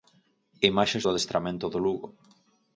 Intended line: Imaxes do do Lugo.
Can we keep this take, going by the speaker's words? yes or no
no